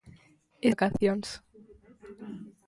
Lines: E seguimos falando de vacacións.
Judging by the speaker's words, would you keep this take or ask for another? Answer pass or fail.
fail